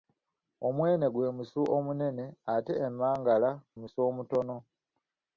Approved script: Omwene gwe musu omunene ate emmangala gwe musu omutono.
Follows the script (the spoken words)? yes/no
no